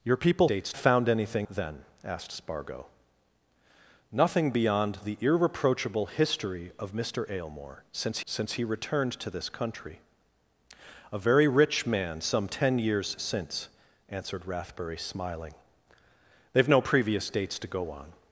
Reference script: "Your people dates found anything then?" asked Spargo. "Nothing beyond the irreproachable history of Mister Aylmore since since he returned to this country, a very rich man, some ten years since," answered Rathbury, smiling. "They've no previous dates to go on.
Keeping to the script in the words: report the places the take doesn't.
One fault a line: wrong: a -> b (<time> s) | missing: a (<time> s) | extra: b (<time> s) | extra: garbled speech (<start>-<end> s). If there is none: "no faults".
no faults